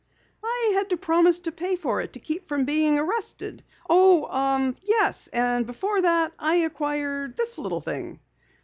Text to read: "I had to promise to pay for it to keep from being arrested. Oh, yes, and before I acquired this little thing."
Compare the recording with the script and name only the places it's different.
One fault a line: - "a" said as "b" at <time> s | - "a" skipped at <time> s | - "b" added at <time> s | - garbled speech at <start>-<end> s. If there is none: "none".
- "that" added at 6.0 s